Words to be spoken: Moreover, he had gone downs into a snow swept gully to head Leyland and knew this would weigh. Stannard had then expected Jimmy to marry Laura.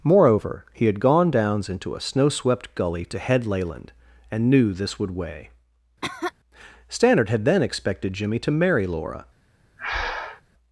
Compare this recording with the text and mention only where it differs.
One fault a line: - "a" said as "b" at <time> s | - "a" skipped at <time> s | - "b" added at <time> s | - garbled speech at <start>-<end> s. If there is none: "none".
none